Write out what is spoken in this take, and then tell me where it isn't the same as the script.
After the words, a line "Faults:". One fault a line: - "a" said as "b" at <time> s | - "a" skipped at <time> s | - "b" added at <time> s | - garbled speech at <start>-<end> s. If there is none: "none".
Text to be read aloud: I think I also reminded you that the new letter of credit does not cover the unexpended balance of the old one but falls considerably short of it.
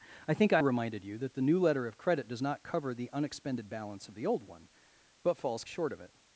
I think I reminded you that the new letter of credit does not cover the unexpended balance of the old one but falls short of it.
Faults:
- "also" skipped at 0.6 s
- "considerably" skipped at 5.7 s